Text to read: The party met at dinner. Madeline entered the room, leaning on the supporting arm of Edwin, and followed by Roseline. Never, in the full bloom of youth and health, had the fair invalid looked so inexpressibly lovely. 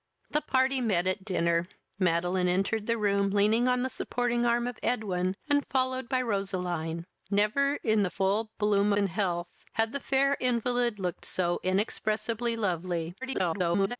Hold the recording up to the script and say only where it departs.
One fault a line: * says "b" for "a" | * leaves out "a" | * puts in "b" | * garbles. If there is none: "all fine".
* leaves out "of youth"
* garbles